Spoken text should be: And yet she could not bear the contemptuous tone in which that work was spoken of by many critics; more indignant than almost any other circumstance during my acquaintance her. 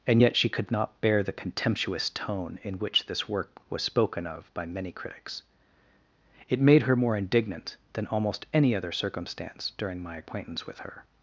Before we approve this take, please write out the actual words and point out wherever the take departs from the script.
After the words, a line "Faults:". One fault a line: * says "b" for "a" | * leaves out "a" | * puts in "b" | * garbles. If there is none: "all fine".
And yet she could not bear the contemptuous tone in which this work was spoken of by many critics; it made her more indignant than almost any other circumstance during my acquaintance with her.
Faults:
* says "this" for "that"
* puts in "it made her"
* puts in "with"